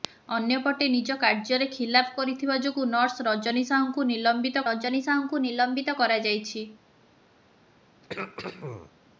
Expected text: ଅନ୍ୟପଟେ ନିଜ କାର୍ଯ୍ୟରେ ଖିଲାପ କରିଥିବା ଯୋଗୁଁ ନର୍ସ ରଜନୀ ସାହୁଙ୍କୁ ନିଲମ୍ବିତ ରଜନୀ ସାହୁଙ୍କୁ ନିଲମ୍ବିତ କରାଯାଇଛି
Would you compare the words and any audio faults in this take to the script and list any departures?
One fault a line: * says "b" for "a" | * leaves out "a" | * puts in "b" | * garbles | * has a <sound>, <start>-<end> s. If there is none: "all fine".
* has a throat clearing, 8.0-8.9 s